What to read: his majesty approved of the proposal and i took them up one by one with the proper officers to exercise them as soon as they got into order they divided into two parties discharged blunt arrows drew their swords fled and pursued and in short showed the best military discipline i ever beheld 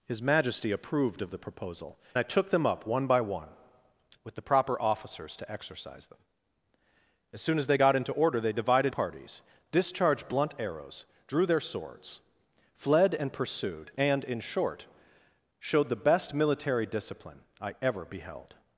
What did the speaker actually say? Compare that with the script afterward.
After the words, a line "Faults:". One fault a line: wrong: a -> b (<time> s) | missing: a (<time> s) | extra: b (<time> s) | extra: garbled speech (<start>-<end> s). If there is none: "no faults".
his majesty approved of the proposal i took them up one by one with the proper officers to exercise them as soon as they got into order they divided parties discharged blunt arrows drew their swords fled and pursued and in short showed the best military discipline i ever beheld
Faults:
missing: and (2.0 s)
missing: into two (8.9 s)